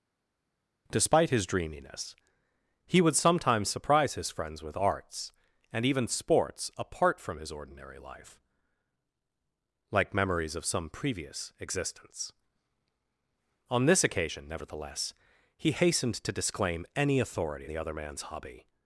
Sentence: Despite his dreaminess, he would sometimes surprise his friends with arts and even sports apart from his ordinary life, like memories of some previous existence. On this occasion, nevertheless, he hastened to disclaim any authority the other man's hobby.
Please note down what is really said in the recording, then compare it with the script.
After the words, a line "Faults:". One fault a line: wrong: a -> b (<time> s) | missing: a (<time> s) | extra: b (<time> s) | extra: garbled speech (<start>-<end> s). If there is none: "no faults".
Despite his dreaminess, he would sometimes surprise his friends with arts and even sports apart from his ordinary life, like memories of some previous existence. On this occasion, nevertheless, he hastened to disclaim any authority the other man's hobby.
Faults:
no faults